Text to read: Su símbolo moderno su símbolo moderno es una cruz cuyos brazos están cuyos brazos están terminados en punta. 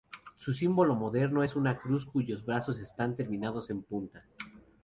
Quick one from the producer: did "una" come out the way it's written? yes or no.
yes